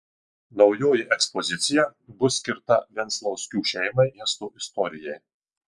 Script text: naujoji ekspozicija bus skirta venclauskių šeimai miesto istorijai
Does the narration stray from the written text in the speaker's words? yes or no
no